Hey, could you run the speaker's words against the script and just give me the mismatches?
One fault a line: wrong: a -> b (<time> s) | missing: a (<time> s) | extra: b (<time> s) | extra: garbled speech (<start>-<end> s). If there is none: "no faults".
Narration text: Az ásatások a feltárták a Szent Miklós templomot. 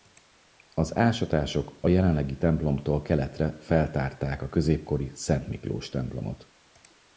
extra: jelenlegi templomtól keletre (1.9 s)
extra: középkori (4.5 s)